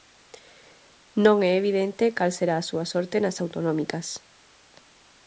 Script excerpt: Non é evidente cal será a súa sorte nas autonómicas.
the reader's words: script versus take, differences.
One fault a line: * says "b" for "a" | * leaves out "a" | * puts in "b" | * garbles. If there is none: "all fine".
all fine